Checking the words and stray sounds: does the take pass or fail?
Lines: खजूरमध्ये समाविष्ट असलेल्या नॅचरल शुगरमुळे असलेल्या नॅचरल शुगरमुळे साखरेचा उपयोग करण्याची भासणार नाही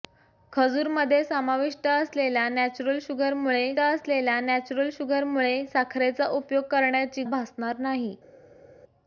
pass